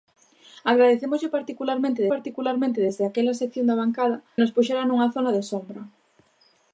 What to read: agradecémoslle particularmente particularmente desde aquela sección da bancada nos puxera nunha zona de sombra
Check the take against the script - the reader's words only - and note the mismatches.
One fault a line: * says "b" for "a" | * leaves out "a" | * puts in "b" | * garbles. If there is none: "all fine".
all fine